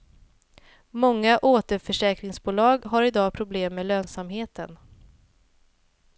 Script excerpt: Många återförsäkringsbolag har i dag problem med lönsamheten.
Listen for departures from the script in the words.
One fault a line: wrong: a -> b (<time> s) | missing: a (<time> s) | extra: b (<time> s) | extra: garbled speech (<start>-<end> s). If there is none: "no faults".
no faults